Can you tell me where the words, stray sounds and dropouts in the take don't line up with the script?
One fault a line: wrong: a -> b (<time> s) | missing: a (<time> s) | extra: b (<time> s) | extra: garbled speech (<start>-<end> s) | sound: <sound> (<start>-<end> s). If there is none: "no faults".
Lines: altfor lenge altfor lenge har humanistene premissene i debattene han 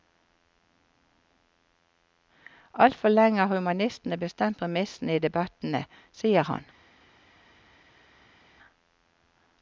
missing: altfor lenge (3.4 s)
extra: bestemt (4.2 s)
extra: sier (6.2 s)